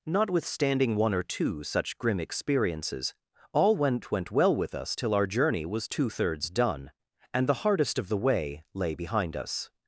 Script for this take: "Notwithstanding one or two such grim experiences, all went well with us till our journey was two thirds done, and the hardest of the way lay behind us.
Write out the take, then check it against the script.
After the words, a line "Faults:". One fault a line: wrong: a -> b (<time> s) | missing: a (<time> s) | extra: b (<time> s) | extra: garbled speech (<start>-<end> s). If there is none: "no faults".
"Notwithstanding one or two such grim experiences, all went went well with us till our journey was two thirds done, and the hardest of the way lay behind us.
Faults:
extra: went (4.1 s)